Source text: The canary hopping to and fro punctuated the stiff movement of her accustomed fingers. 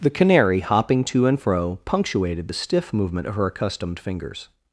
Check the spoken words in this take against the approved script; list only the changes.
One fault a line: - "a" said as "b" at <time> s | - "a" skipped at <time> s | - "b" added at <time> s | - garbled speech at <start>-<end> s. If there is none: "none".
none